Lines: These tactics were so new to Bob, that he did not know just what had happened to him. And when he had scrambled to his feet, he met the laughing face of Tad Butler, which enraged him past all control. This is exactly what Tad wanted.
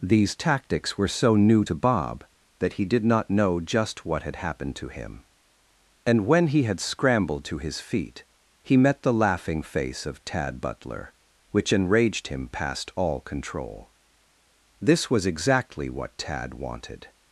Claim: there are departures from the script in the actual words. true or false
true